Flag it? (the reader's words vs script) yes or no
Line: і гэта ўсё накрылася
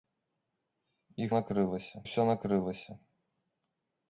yes